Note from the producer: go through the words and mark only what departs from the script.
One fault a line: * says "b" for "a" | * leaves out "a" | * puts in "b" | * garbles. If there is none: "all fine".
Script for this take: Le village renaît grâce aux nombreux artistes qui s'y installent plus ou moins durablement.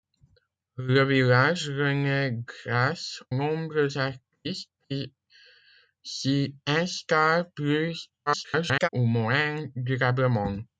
* leaves out "aux"
* garbles